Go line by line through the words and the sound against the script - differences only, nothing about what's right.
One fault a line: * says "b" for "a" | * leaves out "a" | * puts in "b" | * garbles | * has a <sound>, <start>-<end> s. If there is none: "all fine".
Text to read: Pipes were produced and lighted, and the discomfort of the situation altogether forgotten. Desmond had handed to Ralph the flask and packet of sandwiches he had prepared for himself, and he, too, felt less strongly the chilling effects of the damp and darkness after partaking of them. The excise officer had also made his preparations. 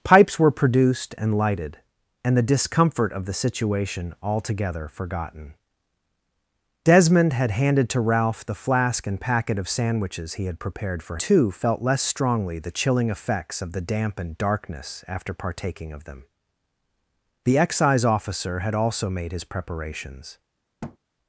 * leaves out "himself and he"
* has a thud, 20.8-21.0 s